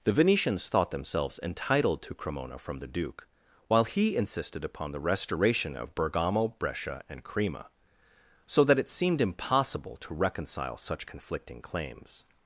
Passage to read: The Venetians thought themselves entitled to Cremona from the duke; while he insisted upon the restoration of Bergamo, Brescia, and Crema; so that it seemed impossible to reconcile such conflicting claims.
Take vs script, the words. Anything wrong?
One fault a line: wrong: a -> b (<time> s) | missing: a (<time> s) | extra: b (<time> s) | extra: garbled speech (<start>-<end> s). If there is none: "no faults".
no faults